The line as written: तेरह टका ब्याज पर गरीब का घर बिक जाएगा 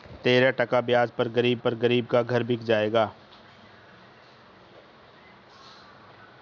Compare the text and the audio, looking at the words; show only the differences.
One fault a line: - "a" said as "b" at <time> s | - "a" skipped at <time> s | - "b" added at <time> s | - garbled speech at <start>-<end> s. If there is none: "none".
- "पर गरीब" added at 1.6 s